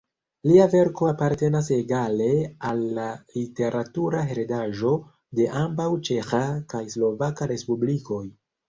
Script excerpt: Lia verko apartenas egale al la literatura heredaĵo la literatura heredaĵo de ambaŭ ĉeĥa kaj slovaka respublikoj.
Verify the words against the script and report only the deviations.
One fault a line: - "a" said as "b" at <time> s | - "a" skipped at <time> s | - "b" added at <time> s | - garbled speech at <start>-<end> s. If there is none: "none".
- "la literatura heredaĵo" skipped at 4.9 s